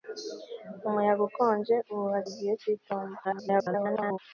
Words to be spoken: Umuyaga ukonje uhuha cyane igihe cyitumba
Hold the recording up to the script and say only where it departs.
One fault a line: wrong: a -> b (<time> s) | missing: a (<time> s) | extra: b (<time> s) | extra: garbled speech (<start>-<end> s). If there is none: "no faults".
missing: cyane (2.2 s)
extra: garbled speech (3.2-4.2 s)